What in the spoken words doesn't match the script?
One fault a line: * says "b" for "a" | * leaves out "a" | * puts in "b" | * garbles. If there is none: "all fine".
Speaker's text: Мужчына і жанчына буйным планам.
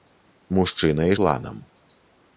* leaves out "жанчына буйным"